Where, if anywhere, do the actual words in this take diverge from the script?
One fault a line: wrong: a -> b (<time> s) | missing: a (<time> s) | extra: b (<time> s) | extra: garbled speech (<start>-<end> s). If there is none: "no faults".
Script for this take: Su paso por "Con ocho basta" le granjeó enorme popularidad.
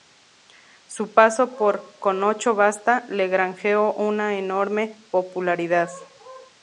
extra: una (3.9 s)